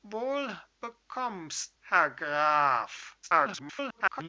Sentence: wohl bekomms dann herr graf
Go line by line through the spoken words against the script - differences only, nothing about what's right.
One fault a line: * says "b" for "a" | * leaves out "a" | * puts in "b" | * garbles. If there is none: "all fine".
* leaves out "dann"
* garbles